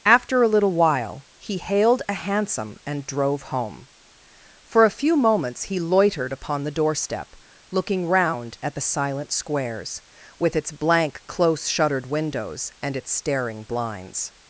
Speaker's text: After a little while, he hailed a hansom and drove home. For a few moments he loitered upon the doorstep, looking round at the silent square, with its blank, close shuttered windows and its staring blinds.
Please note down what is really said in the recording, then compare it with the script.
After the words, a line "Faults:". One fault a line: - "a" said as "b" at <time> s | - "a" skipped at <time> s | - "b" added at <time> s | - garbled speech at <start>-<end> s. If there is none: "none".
After a little while, he hailed a hansom and drove home. For a few moments he loitered upon the doorstep, looking round at the silent squares, with its blank, close shuttered windows and its staring blinds.
Faults:
- "square" said as "squares" at 9.3 s